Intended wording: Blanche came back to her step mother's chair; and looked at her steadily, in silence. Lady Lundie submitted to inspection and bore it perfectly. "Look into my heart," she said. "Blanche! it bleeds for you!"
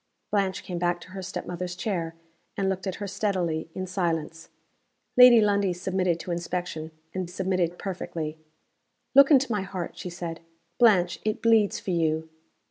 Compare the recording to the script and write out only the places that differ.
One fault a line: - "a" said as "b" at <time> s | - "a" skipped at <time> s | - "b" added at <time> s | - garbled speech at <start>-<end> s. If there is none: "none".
- "bore" said as "submitted" at 7.3 s